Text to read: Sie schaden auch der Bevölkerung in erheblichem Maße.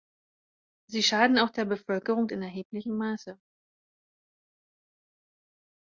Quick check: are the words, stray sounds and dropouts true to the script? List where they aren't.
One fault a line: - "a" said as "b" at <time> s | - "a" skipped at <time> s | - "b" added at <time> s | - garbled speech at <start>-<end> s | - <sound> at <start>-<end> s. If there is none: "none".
none